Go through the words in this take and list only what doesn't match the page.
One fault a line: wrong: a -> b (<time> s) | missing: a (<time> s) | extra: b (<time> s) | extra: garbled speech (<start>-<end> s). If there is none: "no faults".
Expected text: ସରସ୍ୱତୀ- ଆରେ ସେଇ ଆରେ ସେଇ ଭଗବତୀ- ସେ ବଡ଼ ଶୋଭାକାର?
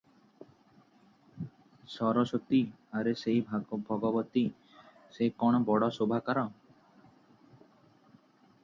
missing: ଆରେ ସେଇ (3.4 s)
extra: କଣ (5.4 s)